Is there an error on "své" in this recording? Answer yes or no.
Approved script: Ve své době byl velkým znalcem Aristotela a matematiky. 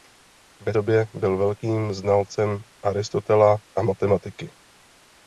yes